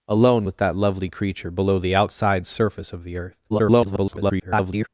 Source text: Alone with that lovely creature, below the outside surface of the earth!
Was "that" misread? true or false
false